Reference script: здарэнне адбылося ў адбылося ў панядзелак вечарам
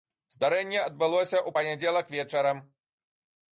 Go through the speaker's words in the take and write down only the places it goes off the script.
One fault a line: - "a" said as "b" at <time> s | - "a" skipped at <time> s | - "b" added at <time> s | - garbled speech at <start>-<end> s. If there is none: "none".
- "адбылося ў" skipped at 1.5 s